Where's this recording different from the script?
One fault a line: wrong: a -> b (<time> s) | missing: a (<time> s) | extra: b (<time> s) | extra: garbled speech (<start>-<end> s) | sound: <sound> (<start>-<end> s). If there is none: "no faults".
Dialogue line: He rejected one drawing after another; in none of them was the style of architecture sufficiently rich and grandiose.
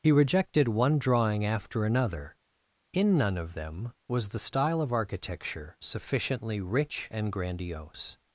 no faults